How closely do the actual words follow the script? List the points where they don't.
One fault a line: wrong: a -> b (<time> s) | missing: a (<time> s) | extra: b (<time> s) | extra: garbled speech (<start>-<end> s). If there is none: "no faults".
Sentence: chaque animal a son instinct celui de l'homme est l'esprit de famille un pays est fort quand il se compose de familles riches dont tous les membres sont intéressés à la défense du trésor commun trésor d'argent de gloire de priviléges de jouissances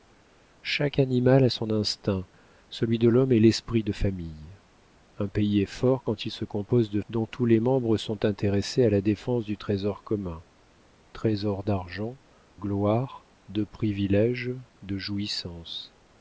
missing: familles riches (7.0 s)
missing: de (12.2 s)